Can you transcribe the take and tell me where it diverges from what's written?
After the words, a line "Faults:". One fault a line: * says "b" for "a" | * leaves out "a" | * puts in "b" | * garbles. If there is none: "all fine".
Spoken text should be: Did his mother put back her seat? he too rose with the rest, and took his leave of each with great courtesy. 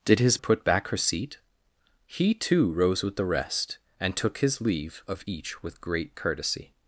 Did his put back her seat? he too rose with the rest, and took his leave of each with great courtesy.
Faults:
* leaves out "mother"